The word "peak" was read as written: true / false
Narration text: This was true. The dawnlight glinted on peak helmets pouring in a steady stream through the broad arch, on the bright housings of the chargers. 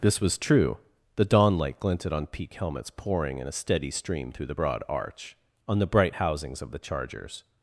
true